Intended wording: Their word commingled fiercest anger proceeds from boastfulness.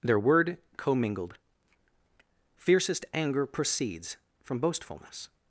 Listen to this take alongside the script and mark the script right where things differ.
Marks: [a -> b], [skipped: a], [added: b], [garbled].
Their word commingled fiercest anger proceeds from boastfulness.